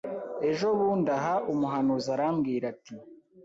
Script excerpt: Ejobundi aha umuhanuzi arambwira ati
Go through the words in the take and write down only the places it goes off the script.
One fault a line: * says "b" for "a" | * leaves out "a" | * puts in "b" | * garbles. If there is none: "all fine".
all fine